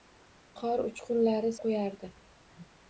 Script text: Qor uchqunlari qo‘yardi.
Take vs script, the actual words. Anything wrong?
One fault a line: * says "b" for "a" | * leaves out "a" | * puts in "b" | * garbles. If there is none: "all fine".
all fine